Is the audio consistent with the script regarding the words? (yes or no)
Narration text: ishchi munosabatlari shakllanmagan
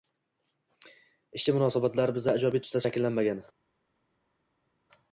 no